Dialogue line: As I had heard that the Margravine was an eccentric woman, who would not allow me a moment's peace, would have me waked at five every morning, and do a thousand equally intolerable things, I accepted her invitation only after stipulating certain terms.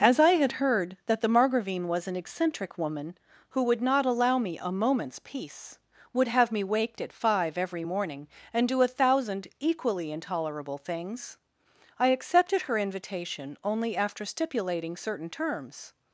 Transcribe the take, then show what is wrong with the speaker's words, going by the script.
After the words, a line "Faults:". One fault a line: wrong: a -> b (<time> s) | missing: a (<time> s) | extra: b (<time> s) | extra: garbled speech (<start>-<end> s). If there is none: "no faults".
As I had heard that the Margravine was an eccentric woman, who would not allow me a moment's peace, would have me waked at five every morning, and do a thousand equally intolerable things, I accepted her invitation only after stipulating certain terms.
Faults:
no faults